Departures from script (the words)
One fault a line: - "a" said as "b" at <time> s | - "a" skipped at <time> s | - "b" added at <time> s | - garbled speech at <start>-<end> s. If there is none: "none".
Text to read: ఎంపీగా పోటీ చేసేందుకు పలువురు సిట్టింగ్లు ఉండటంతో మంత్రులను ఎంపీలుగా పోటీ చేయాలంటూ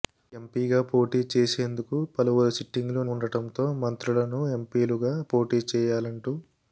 none